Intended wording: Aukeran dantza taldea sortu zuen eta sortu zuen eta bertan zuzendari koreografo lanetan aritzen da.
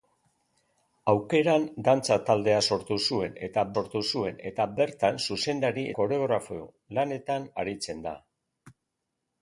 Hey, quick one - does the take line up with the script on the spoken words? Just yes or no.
yes